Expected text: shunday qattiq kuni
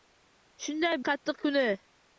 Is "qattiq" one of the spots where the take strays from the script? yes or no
no